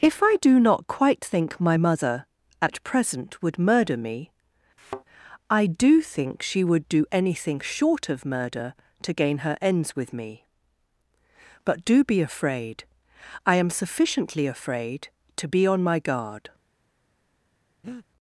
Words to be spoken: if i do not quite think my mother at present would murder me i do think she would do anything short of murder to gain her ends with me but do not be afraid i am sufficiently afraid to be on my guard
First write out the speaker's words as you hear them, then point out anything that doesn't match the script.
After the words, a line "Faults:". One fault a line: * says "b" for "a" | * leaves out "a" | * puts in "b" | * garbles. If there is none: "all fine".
if i do not quite think my mother at present would murder me i do think she would do anything short of murder to gain her ends with me but do be afraid i am sufficiently afraid to be on my guard
Faults:
* leaves out "not"